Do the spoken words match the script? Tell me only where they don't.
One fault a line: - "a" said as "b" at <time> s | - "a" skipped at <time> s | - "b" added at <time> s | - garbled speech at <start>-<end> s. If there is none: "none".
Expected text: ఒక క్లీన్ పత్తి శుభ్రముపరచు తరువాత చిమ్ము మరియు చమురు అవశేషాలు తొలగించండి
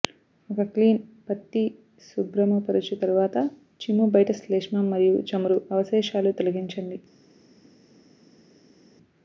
- "బయట శ్లేష్మం" added at 4.2 s